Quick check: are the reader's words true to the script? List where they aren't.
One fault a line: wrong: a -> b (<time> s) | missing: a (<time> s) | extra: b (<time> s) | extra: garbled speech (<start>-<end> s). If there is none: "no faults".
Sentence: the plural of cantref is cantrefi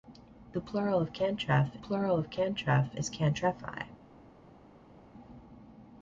extra: plural of cantref (1.8 s)